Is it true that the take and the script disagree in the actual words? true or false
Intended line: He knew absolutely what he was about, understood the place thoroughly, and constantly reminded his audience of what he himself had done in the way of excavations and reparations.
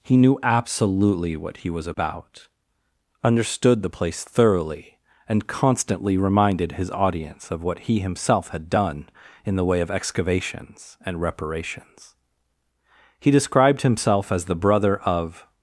true